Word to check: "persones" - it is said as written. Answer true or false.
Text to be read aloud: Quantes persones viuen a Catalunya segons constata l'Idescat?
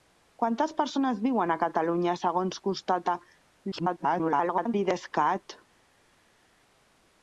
true